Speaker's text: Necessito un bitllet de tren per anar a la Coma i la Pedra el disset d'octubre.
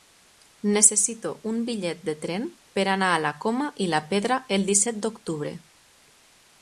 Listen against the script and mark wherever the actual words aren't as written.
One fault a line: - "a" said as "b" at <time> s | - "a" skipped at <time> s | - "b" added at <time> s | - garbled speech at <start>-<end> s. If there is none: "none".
none